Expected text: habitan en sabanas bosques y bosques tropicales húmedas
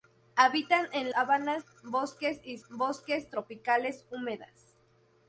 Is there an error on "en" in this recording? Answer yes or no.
no